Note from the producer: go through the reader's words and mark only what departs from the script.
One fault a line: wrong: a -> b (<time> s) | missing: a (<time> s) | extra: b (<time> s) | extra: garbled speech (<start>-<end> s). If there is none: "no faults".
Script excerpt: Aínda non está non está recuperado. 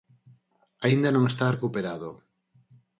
missing: non está (1.4 s)